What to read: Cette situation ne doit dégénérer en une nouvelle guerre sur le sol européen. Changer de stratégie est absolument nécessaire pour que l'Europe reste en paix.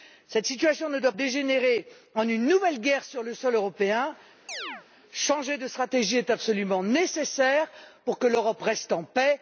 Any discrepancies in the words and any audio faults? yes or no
yes